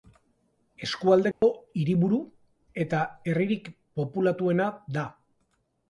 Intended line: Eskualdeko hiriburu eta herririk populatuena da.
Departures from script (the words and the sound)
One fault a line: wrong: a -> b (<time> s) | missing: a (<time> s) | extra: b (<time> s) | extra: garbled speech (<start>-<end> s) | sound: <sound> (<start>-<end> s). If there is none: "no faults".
sound: dropout (1.3-1.4 s)